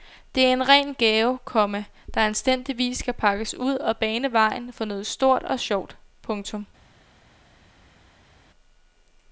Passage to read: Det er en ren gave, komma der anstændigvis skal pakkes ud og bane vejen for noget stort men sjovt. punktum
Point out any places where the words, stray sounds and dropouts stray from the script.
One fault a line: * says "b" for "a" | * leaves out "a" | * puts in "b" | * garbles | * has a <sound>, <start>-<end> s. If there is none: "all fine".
* says "og" for "men"